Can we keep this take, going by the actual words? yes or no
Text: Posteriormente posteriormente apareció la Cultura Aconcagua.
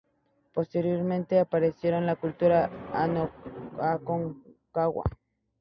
no